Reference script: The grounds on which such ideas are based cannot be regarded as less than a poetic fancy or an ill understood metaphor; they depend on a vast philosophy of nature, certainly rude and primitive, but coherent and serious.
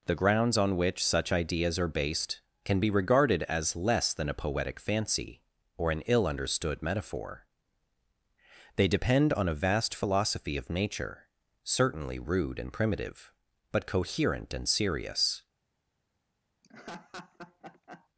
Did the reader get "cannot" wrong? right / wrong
wrong